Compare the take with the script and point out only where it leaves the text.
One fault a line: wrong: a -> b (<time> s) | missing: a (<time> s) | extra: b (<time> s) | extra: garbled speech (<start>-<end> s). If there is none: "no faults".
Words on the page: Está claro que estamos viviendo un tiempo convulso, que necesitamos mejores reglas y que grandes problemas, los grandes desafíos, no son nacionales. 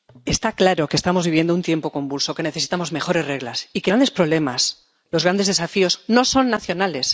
no faults